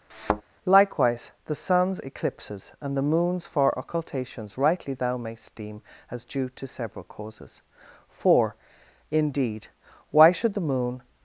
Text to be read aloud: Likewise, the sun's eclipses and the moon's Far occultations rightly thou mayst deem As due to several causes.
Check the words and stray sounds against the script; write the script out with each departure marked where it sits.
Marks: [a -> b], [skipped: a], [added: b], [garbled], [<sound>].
[thud] Likewise, the sun's eclipses and the moon's Far occultations rightly thou mayst deem As due to several causes. [added: For indeed Why should the moon]